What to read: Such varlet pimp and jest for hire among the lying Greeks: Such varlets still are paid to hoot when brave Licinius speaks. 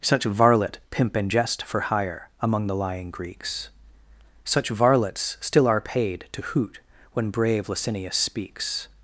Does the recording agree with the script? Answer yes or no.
yes